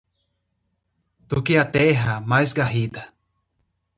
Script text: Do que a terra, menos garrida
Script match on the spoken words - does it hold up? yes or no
no